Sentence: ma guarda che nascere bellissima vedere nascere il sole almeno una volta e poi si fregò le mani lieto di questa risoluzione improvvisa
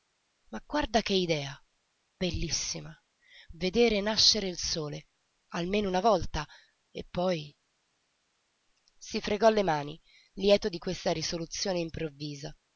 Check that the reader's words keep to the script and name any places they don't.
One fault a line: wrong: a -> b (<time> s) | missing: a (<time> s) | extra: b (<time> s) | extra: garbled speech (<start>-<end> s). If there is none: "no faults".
wrong: nascere -> idea (1.1 s)